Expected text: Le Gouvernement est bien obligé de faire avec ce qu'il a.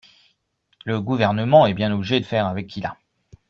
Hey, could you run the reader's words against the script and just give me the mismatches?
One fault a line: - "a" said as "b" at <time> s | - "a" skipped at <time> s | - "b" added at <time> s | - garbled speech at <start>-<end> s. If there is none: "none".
- "de" skipped at 2.2 s
- "ce" skipped at 2.7 s